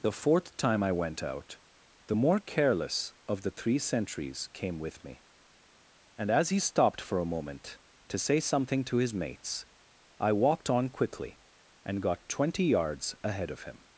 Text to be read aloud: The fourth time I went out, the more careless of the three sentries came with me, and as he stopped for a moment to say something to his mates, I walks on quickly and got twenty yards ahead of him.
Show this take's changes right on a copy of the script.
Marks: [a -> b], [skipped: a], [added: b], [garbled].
The fourth time I went out, the more careless of the three sentries came with me, and as he stopped for a moment to say something to his mates, I [walks -> walked] on quickly and got twenty yards ahead of him.